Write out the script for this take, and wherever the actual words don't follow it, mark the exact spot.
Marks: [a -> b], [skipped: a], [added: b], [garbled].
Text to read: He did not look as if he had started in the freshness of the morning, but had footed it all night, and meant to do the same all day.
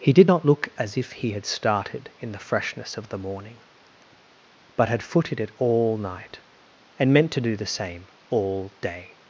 He did not look as if he had started in the freshness of the morning, but had footed it all night, and meant to do the same all day.